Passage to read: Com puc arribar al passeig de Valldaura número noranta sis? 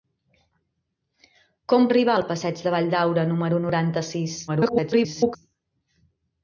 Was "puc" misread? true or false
true